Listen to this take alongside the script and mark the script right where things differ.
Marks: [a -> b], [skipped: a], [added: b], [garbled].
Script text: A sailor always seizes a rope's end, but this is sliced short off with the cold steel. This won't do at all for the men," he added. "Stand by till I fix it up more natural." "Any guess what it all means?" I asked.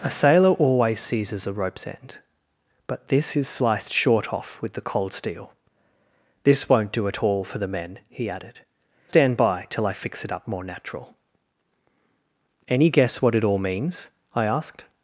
A sailor always seizes a rope's end, but this is sliced short off with the cold steel. This won't do at all for the men," he added. "Stand by till I fix it up more natural." "Any guess what it all means?" I asked.